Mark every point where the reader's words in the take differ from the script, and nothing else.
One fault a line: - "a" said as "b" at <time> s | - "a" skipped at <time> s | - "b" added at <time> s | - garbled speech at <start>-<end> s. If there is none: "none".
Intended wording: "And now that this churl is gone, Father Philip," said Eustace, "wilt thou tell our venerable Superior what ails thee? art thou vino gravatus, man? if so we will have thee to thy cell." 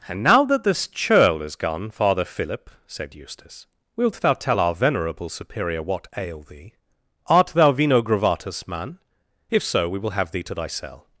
- "ails" said as "ail" at 6.2 s